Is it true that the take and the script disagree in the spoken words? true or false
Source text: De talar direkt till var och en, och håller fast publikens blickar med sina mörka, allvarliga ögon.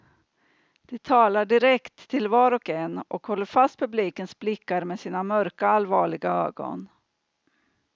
false